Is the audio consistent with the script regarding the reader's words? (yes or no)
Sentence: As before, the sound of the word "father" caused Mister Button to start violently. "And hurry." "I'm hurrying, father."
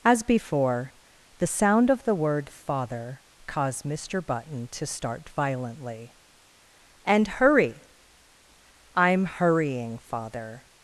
yes